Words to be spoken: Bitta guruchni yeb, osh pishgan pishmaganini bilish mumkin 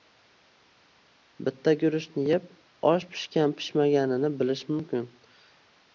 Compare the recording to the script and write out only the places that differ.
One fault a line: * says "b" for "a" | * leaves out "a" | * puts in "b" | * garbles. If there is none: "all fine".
all fine